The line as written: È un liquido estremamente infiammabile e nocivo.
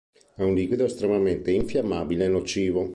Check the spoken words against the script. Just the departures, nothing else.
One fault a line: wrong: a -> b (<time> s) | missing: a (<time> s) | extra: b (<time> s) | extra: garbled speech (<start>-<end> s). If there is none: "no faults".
no faults